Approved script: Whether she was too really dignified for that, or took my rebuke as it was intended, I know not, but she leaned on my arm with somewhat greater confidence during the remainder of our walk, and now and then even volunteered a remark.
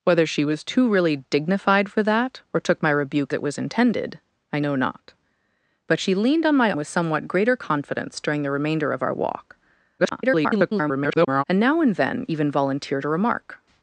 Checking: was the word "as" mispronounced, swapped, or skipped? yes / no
yes